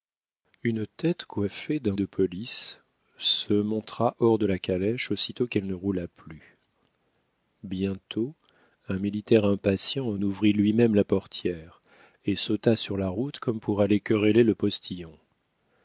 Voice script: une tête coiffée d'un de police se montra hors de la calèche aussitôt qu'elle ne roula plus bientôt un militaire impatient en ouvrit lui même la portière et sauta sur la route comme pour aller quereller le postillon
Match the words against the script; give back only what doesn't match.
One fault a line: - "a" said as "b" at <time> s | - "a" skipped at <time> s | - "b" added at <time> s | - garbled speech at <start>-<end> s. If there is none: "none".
none